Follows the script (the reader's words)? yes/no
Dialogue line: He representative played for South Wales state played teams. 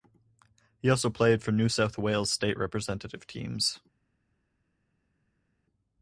no